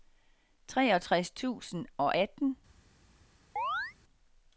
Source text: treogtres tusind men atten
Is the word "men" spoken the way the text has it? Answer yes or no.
no